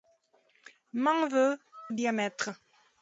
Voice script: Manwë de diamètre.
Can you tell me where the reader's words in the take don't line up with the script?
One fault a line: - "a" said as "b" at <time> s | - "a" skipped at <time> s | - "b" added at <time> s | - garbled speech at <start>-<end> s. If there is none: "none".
none